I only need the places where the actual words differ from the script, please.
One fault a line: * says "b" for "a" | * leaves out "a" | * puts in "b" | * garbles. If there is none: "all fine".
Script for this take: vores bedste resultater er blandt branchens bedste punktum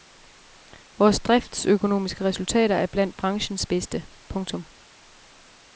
* says "driftsøkonomiske" for "bedste"